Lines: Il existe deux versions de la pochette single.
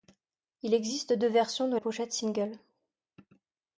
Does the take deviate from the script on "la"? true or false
true